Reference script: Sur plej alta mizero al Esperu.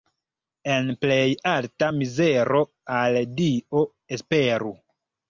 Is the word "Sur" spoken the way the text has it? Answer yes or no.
no